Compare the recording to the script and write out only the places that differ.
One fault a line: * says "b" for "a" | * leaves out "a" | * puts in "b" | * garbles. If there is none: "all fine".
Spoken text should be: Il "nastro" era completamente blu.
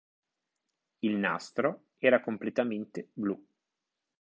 all fine